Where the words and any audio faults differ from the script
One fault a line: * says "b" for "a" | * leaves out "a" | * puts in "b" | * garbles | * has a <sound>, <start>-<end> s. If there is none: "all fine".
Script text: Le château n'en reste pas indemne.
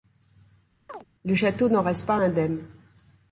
* has a chirp, 0.9-1.1 s